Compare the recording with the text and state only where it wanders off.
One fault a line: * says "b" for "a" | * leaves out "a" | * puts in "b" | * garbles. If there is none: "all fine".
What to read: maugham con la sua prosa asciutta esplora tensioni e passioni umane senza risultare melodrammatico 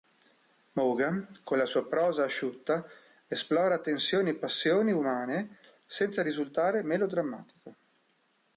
all fine